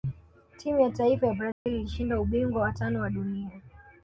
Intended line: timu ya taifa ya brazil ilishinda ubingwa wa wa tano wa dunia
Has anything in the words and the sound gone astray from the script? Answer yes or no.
yes